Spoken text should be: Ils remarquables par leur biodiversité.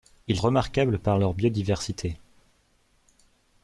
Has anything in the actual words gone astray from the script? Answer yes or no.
no